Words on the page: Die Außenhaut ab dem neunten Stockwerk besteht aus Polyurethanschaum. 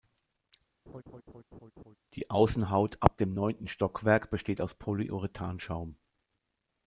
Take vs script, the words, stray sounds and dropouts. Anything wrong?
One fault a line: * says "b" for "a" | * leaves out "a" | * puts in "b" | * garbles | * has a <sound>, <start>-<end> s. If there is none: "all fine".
* has a laugh, 0.9-2.0 s